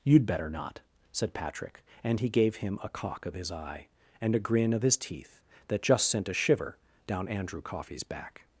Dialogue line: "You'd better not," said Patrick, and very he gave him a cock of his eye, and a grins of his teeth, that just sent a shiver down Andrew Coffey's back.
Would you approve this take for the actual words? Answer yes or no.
no